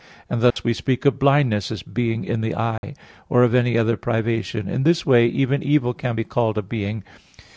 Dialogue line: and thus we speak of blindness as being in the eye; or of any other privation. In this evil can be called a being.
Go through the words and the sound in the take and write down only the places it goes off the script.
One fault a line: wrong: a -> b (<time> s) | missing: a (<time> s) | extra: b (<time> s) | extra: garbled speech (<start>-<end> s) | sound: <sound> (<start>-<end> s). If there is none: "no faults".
sound: dropout (0.5-0.6 s)
sound: dropout (2.8-2.8 s)
extra: way even (5.0 s)